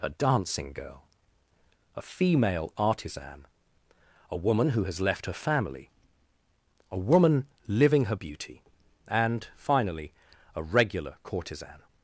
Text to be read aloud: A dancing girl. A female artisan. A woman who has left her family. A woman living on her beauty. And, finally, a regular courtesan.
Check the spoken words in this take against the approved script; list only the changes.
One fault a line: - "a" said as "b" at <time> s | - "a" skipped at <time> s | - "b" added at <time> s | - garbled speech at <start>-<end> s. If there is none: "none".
- "on" skipped at 8.0 s